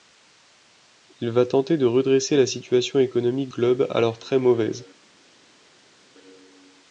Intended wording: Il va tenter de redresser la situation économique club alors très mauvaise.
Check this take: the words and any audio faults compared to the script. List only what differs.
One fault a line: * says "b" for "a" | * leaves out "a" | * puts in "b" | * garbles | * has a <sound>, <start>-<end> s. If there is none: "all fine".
all fine